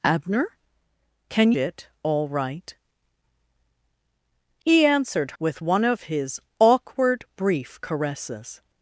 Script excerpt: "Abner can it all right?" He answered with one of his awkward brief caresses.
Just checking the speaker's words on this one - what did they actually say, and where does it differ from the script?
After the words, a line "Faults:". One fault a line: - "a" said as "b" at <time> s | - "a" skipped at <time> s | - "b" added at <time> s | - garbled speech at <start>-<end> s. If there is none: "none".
"Abner can it all right?" He answered with one of his awkward brief caresses.
Faults:
none